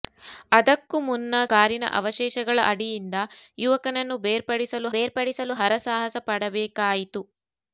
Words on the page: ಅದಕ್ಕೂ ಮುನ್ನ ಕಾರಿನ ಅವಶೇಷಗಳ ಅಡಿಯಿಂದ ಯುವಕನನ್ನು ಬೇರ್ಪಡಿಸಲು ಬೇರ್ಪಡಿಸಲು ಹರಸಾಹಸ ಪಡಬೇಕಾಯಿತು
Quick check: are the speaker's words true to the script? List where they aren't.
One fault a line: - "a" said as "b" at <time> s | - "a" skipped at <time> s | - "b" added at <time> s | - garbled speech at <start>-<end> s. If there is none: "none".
none